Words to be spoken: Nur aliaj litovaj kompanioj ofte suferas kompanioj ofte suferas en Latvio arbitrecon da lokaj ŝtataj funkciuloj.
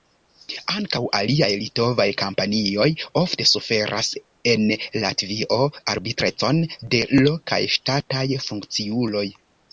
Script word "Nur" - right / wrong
wrong